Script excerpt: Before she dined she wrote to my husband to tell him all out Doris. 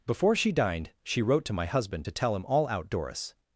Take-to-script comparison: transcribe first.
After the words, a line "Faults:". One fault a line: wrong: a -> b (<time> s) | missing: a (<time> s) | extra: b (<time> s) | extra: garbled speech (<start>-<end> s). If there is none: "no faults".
Before she dined she wrote to my husband to tell him all out Doris.
Faults:
no faults